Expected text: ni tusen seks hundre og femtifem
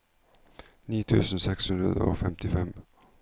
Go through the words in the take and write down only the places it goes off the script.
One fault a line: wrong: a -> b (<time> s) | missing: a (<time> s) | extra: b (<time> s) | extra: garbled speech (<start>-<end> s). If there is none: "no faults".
no faults